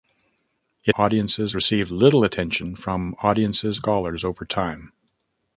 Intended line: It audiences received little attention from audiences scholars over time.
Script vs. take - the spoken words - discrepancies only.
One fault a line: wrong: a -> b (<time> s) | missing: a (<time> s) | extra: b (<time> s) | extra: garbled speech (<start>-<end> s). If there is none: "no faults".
no faults